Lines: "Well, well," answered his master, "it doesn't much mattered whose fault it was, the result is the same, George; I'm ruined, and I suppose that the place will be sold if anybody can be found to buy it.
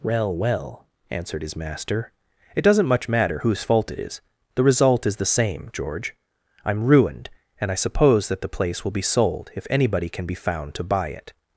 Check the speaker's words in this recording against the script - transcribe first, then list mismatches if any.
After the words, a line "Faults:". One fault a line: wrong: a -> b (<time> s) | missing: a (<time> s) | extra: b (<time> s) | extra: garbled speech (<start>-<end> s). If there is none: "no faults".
"Well, well," answered his master, "it doesn't much matter whose fault it is, the result is the same, George; I'm ruined, and I suppose that the place will be sold if anybody can be found to buy it.
Faults:
wrong: mattered -> matter (3.1 s)
wrong: was -> is (4.0 s)